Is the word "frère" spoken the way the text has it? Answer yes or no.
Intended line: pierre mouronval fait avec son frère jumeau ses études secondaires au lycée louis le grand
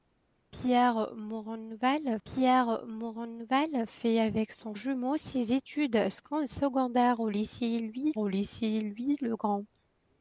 no